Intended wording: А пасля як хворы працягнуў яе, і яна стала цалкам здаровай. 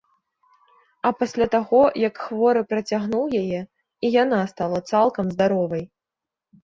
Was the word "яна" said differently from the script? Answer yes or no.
no